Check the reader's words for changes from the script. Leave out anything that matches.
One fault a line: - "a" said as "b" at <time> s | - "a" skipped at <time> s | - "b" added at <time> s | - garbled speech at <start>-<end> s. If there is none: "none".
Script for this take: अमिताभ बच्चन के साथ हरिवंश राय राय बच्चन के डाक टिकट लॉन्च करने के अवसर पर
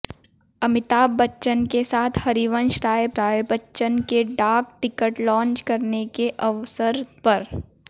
none